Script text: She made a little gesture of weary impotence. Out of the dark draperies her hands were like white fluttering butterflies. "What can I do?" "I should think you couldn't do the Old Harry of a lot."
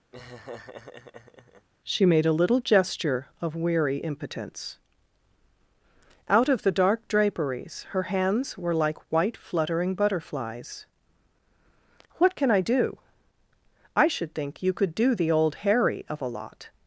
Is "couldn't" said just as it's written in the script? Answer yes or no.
no